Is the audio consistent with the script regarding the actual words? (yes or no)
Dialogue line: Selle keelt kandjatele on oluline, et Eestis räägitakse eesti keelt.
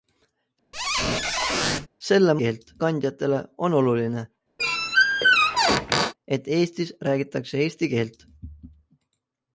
yes